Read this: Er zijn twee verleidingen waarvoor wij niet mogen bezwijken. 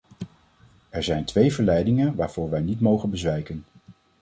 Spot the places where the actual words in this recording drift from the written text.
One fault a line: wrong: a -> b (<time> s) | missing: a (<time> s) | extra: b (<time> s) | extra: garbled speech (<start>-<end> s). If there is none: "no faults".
no faults